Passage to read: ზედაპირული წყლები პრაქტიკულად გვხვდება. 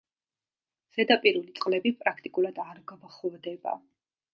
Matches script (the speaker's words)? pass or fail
fail